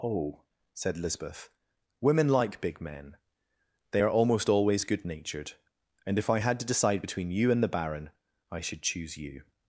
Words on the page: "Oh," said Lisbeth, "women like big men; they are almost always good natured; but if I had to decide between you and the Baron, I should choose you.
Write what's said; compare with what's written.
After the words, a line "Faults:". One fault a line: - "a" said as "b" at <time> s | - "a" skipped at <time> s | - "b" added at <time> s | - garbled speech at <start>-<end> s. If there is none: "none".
"Oh," said Lisbeth, "women like big men; they are almost always good natured; and if I had to decide between you and the Baron, I should choose you.
Faults:
- "but" said as "and" at 6.1 s